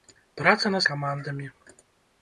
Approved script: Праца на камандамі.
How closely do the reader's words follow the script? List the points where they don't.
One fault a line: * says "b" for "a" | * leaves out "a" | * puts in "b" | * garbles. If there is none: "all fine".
all fine